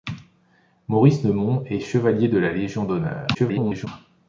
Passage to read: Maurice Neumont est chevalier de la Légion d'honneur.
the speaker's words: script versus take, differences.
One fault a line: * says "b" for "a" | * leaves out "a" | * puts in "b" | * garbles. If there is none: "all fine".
* garbles